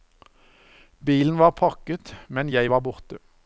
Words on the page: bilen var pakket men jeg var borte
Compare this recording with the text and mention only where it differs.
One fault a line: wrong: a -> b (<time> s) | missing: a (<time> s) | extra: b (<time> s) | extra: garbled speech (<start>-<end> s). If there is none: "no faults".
no faults